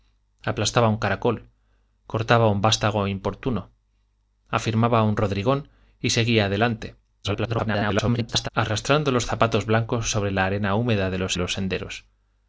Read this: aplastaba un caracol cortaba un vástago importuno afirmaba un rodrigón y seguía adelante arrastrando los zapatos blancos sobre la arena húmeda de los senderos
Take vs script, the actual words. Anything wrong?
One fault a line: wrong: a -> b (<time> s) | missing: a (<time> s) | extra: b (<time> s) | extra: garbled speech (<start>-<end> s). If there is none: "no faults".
extra: garbled speech (7.2-8.5 s)
extra: los (11.4 s)